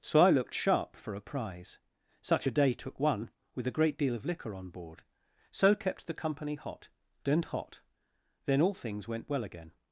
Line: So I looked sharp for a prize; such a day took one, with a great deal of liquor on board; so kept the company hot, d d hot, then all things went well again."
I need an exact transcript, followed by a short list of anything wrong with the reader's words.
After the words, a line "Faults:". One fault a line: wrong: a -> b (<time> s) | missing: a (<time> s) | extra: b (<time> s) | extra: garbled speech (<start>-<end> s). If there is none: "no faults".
So I looked sharp for a prize; such a day took one, with a great deal of liquor on board; so kept the company hot, and hot, then all things went well again."
Faults:
wrong: d d -> and (7.3 s)